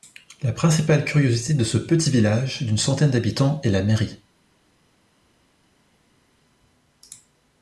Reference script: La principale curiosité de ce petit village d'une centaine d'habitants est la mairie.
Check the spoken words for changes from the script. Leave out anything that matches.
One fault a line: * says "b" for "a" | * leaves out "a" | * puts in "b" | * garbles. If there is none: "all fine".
all fine